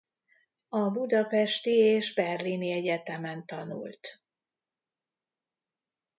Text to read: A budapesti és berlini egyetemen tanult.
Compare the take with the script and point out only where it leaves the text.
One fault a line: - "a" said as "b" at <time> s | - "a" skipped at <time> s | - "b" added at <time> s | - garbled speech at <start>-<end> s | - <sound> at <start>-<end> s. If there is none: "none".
none